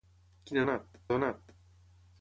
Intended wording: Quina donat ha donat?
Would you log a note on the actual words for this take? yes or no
no